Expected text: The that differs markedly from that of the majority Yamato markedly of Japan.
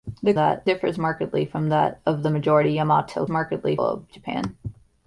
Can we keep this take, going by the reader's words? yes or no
yes